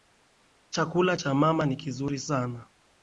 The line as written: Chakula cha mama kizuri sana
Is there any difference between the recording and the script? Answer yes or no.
yes